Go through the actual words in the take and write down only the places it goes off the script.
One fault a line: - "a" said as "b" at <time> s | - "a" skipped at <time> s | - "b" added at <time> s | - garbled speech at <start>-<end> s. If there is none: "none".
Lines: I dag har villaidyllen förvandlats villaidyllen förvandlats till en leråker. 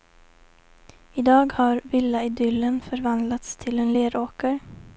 - "villaidyllen förvandlats" skipped at 3.5 s